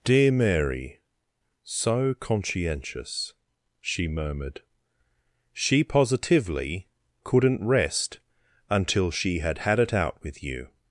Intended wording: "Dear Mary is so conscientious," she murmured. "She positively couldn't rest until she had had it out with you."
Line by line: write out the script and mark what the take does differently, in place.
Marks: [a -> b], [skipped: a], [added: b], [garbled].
"Dear Mary [skipped: is] so conscientious," she murmured. "She positively couldn't rest until she had had it out with you."